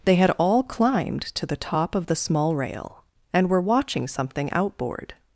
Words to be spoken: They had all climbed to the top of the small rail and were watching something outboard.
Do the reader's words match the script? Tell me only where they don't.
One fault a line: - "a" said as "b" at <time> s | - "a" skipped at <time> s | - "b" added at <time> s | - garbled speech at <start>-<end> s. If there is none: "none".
none